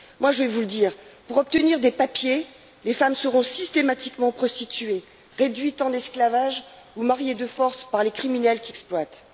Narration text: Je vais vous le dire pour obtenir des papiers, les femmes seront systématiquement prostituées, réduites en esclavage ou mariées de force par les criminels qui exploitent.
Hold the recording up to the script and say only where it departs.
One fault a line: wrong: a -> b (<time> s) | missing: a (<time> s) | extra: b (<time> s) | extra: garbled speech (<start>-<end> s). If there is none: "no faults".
no faults